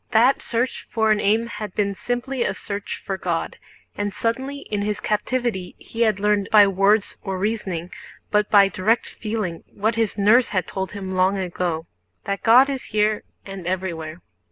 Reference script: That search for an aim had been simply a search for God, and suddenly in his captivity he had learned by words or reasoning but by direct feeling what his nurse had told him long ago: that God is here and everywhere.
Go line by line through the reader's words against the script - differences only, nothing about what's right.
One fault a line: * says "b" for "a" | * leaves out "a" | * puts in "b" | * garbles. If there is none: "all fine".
all fine